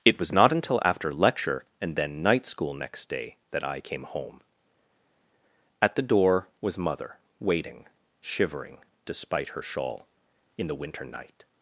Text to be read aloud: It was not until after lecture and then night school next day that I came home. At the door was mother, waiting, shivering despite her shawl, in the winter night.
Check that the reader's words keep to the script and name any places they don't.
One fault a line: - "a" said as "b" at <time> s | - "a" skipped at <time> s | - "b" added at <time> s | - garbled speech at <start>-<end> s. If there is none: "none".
none